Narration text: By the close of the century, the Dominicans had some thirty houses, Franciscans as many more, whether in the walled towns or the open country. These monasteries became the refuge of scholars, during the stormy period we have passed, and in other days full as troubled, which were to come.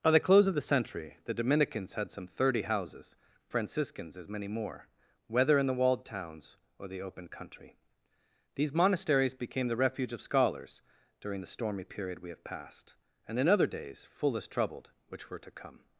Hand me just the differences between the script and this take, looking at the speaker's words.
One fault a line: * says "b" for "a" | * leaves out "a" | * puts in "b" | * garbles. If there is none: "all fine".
all fine